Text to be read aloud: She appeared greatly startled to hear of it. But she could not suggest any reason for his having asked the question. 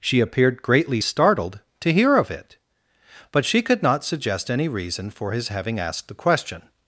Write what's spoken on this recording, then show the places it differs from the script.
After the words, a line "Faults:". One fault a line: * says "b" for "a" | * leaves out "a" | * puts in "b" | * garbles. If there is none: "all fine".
She appeared greatly startled to hear of it. But she could not suggest any reason for his having asked the question.
Faults:
all fine